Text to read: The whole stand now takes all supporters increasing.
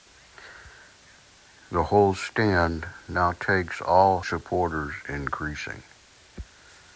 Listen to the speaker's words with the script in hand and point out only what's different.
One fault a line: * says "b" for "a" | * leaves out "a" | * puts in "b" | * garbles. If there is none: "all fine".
all fine